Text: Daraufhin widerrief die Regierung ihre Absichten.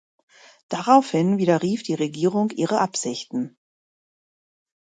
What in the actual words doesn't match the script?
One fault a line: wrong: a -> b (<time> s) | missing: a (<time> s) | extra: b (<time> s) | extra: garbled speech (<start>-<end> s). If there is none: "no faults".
no faults